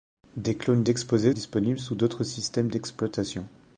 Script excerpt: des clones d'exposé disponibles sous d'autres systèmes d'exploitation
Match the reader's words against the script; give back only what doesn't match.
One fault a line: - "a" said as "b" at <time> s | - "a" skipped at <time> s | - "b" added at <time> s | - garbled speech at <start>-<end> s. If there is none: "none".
none